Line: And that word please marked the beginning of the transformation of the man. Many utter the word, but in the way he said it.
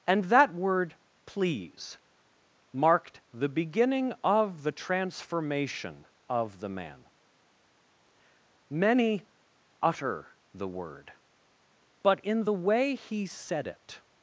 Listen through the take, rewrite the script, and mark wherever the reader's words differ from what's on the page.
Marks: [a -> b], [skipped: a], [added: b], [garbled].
And that word please marked the beginning of the transformation of the man. Many utter the word, but in the way he said it.